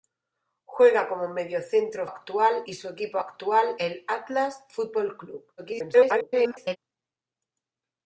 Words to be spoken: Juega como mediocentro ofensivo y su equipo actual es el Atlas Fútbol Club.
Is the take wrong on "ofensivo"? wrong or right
wrong